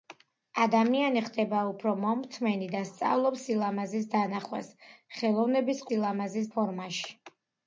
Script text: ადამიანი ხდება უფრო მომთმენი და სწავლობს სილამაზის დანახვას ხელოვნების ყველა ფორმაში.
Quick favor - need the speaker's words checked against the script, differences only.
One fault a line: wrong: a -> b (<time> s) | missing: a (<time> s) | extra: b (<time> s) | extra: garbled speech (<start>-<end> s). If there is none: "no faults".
wrong: ყველა -> სილამაზის (5.9 s)